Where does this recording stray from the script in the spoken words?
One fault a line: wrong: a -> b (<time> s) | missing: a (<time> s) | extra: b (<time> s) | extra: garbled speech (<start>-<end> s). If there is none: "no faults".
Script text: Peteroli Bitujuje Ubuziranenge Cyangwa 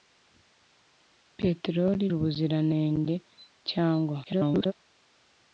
missing: Bitujuje (2.0 s)
extra: garbled speech (4.3-4.7 s)